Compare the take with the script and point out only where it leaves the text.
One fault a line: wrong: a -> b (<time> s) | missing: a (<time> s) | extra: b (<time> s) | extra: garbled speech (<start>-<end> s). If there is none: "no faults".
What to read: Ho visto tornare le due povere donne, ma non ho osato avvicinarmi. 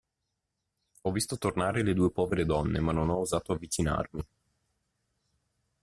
no faults